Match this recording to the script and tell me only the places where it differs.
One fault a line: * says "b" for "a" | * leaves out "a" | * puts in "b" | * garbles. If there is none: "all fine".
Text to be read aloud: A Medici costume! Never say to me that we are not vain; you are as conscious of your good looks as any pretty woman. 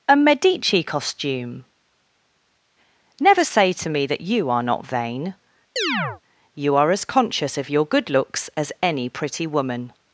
* says "you" for "we"